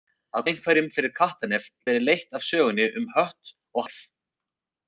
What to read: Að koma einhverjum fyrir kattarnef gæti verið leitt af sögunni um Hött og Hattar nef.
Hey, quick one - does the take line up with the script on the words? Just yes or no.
no